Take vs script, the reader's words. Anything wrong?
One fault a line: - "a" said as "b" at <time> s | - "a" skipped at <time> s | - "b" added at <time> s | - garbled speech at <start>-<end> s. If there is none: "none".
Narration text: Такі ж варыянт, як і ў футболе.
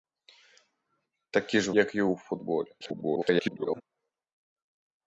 - "варыянт" skipped at 1.7 s
- garbled speech at 2.8-3.8 s